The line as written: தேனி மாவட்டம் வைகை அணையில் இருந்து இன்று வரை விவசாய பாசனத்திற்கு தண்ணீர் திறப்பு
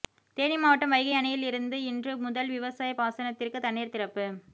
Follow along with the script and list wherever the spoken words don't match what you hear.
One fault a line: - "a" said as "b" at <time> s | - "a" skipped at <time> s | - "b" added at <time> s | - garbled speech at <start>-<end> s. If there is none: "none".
- "வரை" said as "முதல்" at 2.2 s